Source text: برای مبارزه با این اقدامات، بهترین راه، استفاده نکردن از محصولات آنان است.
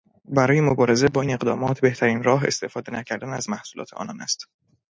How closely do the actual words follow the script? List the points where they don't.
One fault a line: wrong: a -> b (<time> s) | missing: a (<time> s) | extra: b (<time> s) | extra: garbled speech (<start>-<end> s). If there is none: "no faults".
no faults